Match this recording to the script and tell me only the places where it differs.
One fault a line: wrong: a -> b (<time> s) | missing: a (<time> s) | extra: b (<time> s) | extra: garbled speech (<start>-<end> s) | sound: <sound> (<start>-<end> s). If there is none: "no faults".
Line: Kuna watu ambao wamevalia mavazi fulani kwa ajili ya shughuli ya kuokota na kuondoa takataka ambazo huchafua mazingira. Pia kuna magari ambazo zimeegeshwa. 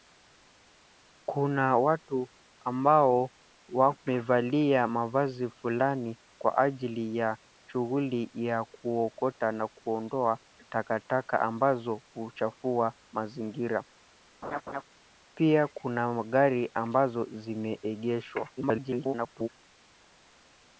sound: laugh (14.4-14.8 s)
extra: garbled speech (18.6-19.5 s)